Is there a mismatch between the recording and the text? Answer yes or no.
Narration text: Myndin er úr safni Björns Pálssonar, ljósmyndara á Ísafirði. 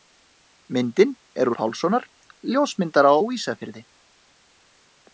yes